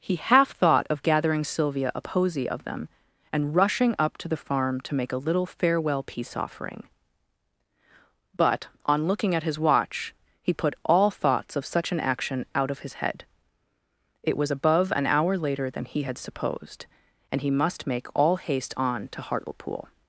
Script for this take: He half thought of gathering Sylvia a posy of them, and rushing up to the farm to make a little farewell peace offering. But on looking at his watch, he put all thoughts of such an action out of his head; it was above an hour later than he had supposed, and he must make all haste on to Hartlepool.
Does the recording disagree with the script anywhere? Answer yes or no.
no